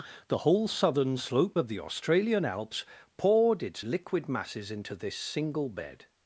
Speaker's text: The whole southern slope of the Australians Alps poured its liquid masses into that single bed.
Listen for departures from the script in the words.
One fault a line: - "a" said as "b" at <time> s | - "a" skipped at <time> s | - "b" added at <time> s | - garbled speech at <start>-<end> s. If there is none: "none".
- "Australians" said as "Australian" at 1.8 s
- "that" said as "this" at 4.9 s